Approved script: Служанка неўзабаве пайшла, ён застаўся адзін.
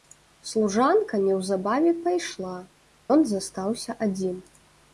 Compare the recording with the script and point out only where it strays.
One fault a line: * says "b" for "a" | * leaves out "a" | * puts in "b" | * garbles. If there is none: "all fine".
all fine